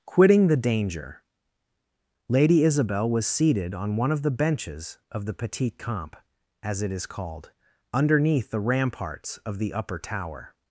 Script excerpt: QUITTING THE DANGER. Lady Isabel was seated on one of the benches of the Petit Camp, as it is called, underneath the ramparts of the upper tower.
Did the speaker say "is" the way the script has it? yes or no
yes